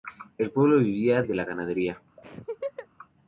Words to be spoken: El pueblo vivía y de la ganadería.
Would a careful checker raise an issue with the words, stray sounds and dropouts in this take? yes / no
yes